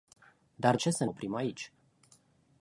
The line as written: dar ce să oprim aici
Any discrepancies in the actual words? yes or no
no